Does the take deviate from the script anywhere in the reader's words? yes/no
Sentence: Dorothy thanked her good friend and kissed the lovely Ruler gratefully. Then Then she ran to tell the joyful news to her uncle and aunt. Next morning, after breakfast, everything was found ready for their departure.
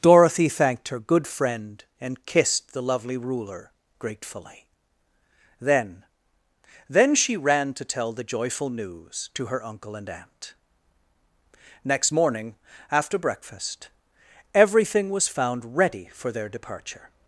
no